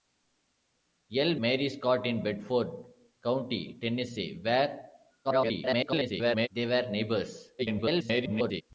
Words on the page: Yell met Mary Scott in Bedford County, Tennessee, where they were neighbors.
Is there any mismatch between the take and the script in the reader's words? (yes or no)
yes